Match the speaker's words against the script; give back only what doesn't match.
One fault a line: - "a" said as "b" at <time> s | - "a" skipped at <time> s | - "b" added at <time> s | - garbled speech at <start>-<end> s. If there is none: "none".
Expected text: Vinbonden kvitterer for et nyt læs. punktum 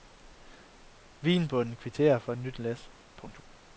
none